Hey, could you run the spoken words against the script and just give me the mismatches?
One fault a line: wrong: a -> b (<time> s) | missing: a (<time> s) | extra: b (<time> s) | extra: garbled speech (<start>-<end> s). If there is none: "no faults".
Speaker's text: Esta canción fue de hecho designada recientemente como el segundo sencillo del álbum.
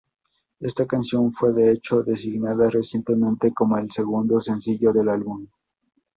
no faults